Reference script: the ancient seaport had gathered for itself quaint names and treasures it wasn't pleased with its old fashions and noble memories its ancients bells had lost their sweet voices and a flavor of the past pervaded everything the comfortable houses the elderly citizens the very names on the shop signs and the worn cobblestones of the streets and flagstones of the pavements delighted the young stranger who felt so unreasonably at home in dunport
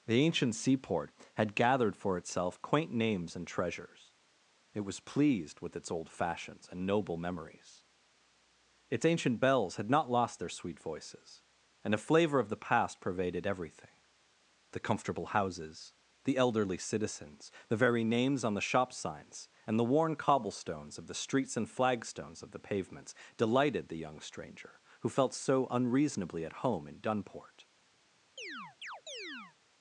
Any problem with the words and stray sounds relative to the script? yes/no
yes